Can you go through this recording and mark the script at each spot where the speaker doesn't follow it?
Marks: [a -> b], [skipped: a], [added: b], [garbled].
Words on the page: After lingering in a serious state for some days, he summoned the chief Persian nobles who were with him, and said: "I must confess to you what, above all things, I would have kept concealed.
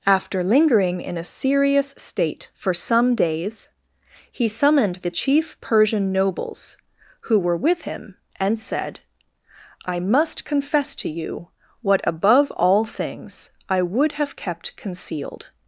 After lingering in a serious state for some days, he summoned the chief Persian nobles who were with him, and said: "I must confess to you what, above all things, I would have kept concealed.